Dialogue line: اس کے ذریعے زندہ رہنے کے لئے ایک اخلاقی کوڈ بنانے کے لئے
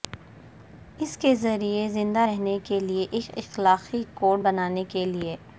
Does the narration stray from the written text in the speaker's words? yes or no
no